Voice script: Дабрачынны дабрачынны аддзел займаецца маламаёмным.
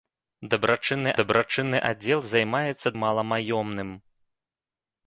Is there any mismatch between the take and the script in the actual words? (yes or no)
no